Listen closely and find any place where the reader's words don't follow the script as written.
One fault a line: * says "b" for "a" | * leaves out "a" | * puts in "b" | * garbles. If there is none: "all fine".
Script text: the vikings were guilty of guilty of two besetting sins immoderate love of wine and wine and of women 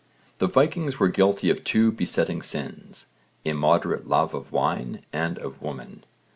* leaves out "guilty of"
* leaves out "wine and"